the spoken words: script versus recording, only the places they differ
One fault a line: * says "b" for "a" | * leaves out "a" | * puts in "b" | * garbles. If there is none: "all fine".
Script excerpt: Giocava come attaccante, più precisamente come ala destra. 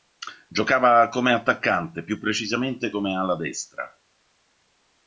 all fine